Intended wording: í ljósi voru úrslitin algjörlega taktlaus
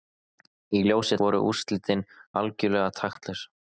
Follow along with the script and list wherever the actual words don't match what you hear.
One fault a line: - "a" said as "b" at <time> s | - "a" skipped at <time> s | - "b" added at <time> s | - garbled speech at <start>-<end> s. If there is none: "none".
none